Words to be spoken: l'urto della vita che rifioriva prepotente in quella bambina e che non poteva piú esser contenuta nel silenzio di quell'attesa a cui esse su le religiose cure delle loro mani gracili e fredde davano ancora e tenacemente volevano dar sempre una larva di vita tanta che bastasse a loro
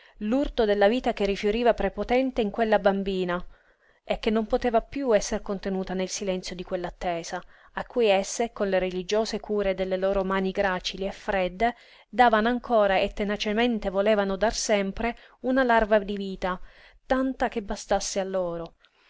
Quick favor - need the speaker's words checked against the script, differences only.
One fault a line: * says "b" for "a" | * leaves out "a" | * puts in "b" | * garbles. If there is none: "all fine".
* says "con" for "su"